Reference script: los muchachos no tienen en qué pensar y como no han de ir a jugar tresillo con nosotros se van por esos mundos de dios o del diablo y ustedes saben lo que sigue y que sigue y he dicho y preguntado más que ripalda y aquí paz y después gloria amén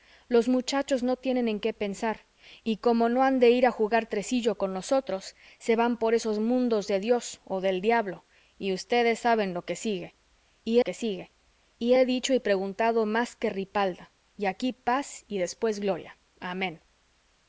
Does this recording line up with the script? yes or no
yes